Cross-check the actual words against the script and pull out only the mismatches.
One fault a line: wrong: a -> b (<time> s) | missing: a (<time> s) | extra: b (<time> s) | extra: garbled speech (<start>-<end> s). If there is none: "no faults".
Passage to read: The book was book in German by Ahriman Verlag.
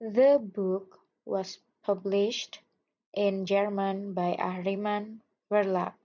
wrong: book -> published (1.8 s)